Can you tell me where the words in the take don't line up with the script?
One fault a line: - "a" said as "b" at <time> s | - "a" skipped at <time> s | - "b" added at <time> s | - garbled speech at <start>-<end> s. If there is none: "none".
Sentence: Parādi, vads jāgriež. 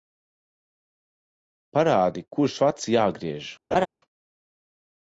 - "kurš" added at 2.4 s